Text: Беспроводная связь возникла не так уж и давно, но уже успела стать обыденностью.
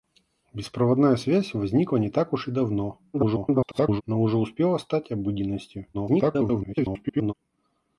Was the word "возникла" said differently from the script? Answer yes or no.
no